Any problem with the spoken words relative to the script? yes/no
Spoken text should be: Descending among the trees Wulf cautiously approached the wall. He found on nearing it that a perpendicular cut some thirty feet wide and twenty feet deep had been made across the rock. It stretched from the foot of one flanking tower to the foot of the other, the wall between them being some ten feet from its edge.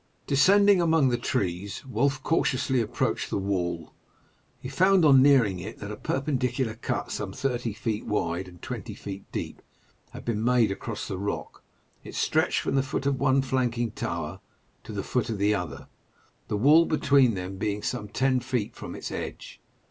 no